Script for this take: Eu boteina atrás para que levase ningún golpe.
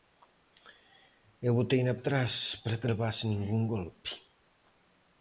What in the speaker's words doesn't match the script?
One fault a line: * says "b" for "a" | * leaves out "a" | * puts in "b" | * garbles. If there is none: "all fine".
all fine